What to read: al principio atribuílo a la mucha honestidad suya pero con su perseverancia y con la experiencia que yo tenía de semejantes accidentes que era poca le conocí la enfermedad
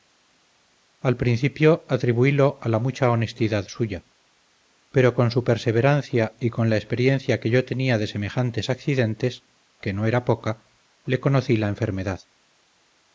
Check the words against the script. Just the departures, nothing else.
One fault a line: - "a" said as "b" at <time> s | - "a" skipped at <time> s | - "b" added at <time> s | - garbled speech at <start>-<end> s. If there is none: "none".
- "no" added at 9.9 s